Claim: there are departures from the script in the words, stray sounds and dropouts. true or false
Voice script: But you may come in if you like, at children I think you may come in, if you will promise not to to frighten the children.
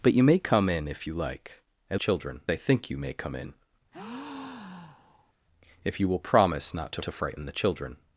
true